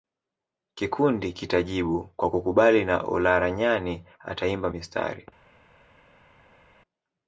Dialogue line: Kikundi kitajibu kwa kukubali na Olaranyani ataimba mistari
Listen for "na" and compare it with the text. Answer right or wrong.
right